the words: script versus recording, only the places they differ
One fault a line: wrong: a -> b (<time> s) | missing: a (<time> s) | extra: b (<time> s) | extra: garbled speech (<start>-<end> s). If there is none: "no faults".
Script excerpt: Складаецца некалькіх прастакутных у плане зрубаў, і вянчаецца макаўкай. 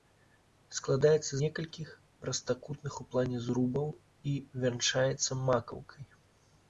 no faults